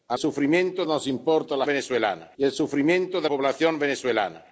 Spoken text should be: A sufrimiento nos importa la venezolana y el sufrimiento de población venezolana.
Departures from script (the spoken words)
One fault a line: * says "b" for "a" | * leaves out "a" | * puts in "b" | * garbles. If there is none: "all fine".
all fine